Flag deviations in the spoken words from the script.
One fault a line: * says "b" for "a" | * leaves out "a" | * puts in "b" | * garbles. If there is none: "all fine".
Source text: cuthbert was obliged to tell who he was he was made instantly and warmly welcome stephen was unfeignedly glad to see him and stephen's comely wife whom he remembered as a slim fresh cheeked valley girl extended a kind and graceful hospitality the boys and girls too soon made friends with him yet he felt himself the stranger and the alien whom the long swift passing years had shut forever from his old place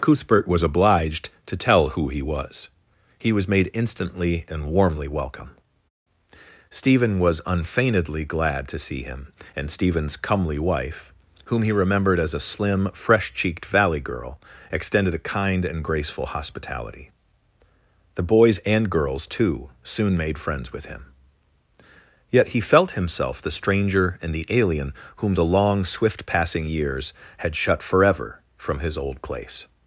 all fine